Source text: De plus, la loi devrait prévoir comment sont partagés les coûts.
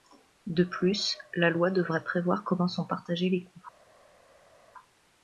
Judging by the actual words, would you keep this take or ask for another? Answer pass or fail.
pass